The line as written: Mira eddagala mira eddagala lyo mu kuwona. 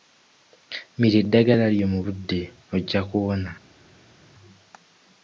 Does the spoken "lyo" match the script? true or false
false